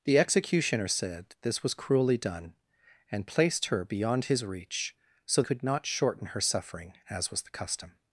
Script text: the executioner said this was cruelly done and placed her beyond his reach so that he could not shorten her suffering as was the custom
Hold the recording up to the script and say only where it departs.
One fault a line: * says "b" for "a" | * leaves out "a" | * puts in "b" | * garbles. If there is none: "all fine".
* leaves out "that he"